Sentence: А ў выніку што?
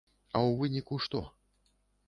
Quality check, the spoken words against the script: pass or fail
pass